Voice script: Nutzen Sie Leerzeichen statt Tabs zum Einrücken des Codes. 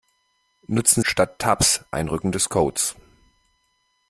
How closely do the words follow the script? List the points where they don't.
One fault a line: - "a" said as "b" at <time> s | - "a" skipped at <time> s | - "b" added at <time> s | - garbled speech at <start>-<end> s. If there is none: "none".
- "Sie Leerzeichen" skipped at 1.0 s
- "zum" skipped at 1.9 s